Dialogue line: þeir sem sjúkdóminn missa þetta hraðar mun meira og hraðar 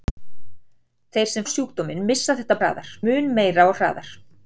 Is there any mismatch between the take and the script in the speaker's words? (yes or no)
no